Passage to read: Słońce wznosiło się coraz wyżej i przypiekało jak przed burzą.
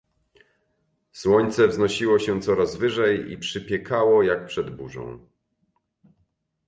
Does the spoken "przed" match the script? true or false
true